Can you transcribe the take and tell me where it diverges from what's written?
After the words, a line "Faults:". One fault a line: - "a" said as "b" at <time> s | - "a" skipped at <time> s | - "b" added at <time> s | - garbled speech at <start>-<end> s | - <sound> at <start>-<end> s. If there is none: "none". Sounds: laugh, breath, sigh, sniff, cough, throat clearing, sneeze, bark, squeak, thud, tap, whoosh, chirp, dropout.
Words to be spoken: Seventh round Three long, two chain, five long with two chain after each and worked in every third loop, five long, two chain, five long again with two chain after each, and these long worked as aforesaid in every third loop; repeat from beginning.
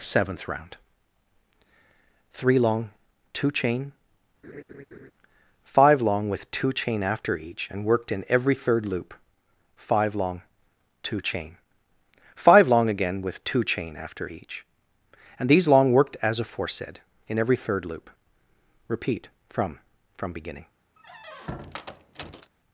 Seventh round Three long, two chain, five long with two chain after each and worked in every third loop, five long, two chain, five long again with two chain after each, and these long worked as aforesaid in every third loop; repeat from from beginning.
Faults:
- laugh at 4.4-5.1 s
- "from" added at 20.2 s
- squeak at 21.0-22.5 s